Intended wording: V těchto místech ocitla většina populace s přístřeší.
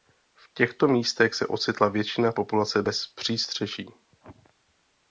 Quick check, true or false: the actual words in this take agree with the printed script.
false